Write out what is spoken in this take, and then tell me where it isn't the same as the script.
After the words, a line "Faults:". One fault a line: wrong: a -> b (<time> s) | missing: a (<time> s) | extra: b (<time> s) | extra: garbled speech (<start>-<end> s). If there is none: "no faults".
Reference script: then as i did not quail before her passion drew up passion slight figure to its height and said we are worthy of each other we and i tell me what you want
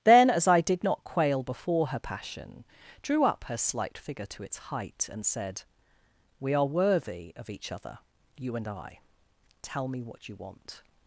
then as i did not quail before her passion drew up her slight figure to its height and said we are worthy of each other you and i tell me what you want
Faults:
wrong: passion -> her (3.4 s)
wrong: we -> you (8.4 s)